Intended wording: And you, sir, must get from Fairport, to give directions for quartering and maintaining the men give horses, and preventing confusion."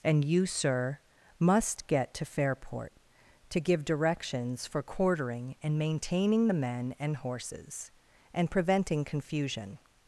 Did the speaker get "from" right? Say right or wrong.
wrong